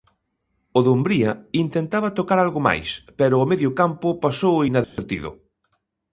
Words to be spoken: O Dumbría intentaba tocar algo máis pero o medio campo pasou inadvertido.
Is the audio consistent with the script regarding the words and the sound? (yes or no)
no